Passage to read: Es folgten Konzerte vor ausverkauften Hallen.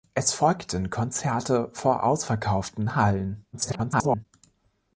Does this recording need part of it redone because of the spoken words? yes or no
yes